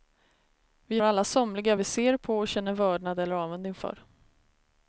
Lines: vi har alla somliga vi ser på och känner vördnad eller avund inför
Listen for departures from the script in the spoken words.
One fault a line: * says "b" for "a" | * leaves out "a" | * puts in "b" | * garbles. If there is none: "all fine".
* leaves out "har"